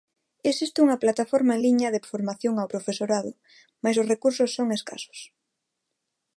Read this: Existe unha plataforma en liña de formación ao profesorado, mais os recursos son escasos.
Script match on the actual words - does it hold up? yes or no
yes